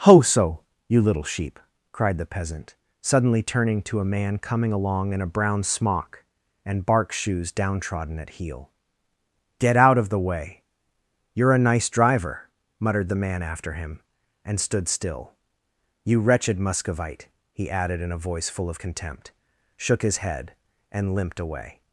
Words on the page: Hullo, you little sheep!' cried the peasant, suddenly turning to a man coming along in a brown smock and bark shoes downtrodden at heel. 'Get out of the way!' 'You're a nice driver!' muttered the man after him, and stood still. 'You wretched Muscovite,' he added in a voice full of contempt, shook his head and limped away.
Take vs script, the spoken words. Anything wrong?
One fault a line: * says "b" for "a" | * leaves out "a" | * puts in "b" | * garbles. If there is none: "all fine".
* says "Ho so" for "Hullo"